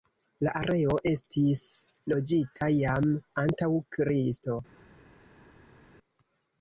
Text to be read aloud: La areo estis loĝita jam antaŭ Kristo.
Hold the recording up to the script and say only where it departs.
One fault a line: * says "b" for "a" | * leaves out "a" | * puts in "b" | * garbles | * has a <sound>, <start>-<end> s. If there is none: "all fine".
all fine